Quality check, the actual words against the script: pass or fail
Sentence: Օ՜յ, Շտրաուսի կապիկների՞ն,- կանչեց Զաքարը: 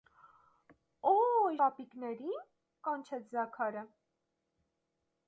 fail